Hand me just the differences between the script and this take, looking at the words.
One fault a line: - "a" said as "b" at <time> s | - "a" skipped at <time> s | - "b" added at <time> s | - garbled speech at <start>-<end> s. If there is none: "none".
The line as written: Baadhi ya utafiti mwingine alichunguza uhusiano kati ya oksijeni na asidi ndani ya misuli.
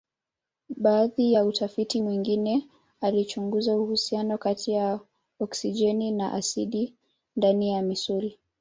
none